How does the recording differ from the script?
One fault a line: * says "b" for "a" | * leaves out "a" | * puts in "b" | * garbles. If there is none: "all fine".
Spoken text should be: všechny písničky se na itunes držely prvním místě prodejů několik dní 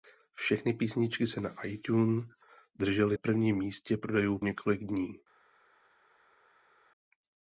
all fine